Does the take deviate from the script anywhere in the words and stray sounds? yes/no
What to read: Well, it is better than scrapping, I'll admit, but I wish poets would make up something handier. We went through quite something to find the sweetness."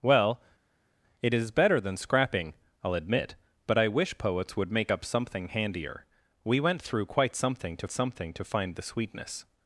yes